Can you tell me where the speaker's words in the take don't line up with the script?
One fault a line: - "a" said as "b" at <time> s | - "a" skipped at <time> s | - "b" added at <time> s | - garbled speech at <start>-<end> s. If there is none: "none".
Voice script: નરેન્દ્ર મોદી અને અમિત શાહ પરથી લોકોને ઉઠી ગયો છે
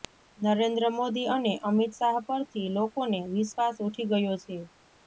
- "વિશ્વાસ" added at 3.3 s